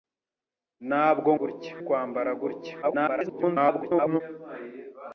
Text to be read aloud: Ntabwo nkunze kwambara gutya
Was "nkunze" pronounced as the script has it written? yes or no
no